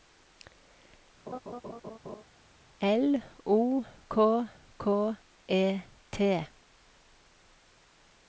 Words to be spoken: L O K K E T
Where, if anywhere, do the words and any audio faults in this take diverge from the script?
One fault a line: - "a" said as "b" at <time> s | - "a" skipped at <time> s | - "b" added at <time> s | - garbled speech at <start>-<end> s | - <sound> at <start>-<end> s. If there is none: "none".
- laugh at 1.3-2.2 s